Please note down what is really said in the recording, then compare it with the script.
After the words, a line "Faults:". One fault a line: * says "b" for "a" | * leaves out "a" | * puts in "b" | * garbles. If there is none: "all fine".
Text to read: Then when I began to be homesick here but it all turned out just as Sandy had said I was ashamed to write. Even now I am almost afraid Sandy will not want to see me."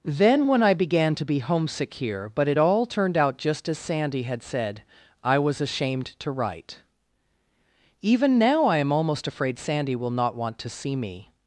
Then when I began to be homesick here but it all turned out just as Sandy had said I was ashamed to write. Even now I am almost afraid Sandy will not want to see me."
Faults:
all fine